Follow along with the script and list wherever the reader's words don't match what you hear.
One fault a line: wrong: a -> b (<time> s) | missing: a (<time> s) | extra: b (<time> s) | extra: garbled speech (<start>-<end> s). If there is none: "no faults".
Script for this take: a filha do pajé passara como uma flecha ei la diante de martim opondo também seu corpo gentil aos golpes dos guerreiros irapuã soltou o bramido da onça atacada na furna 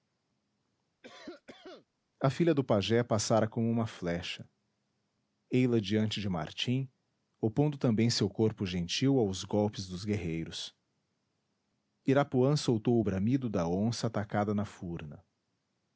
no faults